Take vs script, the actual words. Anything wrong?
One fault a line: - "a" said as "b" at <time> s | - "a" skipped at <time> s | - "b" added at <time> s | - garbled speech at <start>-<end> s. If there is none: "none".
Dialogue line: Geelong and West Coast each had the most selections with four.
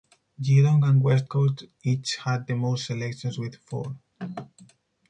none